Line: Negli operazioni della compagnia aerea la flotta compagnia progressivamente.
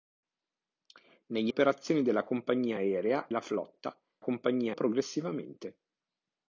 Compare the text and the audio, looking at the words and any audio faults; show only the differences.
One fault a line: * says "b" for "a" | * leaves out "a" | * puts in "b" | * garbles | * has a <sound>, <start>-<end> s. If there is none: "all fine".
all fine